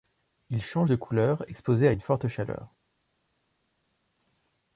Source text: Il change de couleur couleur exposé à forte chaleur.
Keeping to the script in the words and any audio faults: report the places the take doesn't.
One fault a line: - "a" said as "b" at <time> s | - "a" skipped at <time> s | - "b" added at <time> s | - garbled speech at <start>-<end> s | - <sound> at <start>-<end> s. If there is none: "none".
- "couleur" skipped at 1.4 s
- "une" added at 1.9 s